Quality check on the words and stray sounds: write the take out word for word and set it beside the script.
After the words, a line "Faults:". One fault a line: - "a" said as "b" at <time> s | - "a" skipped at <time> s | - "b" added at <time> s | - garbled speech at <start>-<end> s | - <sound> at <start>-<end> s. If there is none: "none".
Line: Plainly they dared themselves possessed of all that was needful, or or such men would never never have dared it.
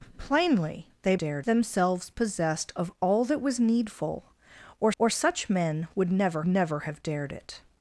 Plainly they dared themselves possessed of all that was needful, or or such men would never never have dared it.
Faults:
none